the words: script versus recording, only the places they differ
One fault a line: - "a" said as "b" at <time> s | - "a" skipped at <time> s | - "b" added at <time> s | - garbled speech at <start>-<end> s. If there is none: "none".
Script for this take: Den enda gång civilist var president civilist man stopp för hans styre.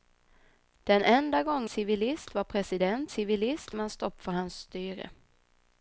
none